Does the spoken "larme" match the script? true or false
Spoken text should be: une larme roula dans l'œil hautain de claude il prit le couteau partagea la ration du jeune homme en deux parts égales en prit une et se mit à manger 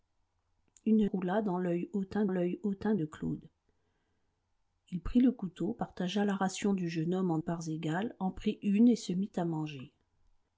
false